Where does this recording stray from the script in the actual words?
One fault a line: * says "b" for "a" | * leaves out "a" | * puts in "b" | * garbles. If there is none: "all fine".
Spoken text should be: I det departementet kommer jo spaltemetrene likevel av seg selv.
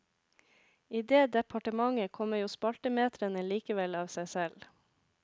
all fine